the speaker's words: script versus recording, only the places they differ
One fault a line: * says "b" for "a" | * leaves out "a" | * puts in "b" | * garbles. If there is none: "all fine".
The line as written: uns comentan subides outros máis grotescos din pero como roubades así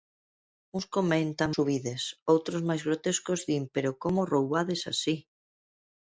all fine